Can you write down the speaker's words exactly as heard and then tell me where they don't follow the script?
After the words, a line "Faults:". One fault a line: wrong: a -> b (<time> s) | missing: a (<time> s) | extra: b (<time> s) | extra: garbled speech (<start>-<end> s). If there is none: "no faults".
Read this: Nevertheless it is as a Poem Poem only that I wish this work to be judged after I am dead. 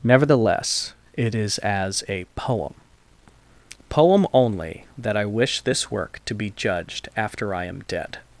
Nevertheless it is as a Poem Poem only that I wish this work to be judged after I am dead.
Faults:
no faults